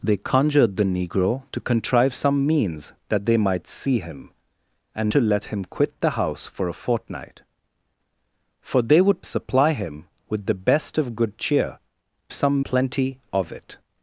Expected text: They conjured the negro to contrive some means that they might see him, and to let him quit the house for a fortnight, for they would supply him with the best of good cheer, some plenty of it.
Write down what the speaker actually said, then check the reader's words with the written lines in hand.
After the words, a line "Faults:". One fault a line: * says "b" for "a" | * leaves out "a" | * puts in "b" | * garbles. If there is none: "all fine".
They conjured the negro to contrive some means that they might see him, and to let him quit the house for a fortnight, for they would supply him with the best of good cheer, some plenty of it.
Faults:
all fine